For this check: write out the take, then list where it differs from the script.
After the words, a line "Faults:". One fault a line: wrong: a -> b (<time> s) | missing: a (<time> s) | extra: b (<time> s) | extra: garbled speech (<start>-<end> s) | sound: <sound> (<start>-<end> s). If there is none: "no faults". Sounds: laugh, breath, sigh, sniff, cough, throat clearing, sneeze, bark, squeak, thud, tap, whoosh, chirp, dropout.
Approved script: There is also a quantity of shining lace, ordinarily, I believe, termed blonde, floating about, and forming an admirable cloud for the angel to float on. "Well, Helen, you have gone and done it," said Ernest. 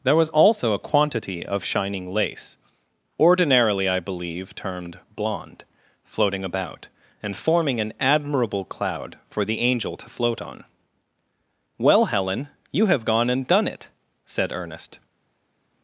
There was also a quantity of shining lace, ordinarily, I believe, termed blonde, floating about, and forming an admirable cloud for the angel to float on. "Well, Helen, you have gone and done it," said Ernest.
Faults:
wrong: is -> was (0.1 s)